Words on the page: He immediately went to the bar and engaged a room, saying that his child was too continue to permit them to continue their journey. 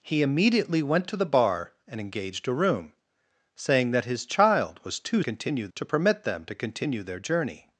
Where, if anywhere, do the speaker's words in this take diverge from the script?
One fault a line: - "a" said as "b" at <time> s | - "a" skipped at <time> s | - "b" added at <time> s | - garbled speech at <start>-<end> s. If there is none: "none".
none